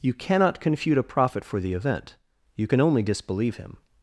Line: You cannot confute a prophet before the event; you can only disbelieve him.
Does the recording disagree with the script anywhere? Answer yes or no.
yes